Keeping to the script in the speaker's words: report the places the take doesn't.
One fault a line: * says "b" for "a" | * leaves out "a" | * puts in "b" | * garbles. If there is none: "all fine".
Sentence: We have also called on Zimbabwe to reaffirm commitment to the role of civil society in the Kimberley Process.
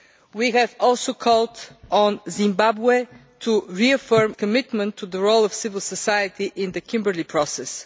all fine